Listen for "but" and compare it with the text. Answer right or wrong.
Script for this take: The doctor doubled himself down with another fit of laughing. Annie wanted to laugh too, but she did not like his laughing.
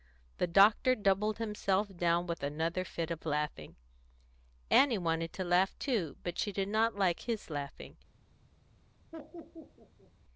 right